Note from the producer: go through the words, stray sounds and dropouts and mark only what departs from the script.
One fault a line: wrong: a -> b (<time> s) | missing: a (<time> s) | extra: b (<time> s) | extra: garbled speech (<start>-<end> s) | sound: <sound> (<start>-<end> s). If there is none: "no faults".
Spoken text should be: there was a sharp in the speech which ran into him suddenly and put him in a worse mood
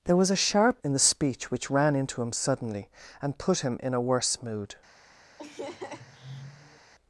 sound: laugh (5.4-6.9 s)